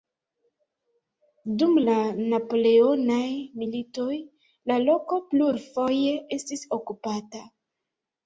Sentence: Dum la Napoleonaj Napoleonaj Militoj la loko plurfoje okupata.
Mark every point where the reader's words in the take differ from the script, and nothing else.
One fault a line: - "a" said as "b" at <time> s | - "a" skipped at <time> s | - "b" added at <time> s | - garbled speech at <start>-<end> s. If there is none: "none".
- "Napoleonaj" skipped at 3.2 s
- "estis" added at 6.4 s